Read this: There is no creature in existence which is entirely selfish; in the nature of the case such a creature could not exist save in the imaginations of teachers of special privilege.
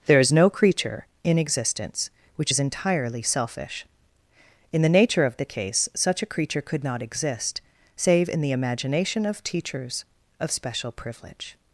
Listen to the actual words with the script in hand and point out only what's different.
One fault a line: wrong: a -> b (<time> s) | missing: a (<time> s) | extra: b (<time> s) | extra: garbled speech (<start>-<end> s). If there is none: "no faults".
wrong: imaginations -> imagination (8.5 s)